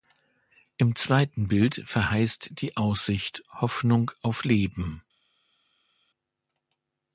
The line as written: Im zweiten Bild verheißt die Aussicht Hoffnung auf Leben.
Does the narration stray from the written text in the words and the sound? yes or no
no